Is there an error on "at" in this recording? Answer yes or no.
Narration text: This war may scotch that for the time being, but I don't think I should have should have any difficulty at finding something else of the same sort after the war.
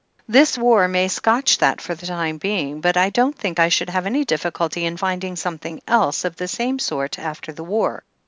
yes